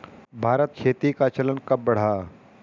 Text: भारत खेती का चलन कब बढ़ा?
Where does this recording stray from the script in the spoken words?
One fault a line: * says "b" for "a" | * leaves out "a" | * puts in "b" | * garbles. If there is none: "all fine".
all fine